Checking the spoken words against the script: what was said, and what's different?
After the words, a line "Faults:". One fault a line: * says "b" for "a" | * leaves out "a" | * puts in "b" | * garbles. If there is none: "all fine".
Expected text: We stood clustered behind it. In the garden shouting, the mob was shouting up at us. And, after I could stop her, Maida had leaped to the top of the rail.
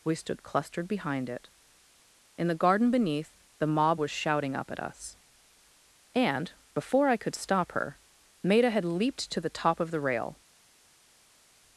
We stood clustered behind it. In the garden beneath, the mob was shouting up at us. And, before I could stop her, Maida had leaped to the top of the rail.
Faults:
* says "beneath" for "shouting"
* says "before" for "after"